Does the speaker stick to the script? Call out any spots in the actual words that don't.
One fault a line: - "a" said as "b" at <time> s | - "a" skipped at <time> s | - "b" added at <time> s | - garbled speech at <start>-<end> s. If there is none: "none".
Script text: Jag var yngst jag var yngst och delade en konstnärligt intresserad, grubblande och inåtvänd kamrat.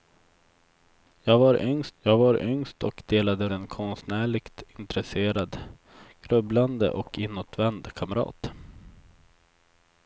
none